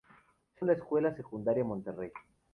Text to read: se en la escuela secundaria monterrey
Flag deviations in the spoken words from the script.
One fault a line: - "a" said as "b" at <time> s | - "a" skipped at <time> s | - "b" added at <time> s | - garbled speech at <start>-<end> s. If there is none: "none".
none